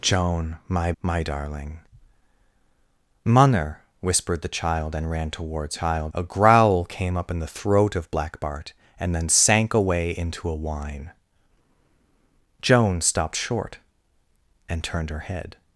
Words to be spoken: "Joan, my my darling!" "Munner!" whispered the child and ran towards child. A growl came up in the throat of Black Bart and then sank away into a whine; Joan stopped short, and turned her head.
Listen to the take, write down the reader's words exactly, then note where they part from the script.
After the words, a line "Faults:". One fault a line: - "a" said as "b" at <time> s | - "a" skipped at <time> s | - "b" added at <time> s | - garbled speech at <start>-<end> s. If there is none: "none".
"Joan, my my darling!" "Munner!" whispered the child and ran towards child. A growl came up in the throat of Black Bart and then sank away into a whine; Joan stopped short, and turned her head.
Faults:
none